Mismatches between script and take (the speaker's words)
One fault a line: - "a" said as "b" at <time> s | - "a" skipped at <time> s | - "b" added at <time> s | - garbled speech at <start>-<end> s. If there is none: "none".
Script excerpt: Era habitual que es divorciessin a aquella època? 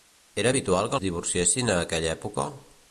none